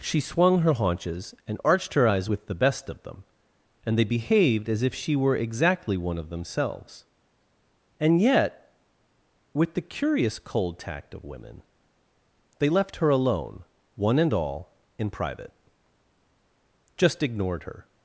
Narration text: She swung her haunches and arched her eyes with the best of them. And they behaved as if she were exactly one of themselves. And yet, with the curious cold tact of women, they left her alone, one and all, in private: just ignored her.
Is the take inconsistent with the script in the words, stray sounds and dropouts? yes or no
no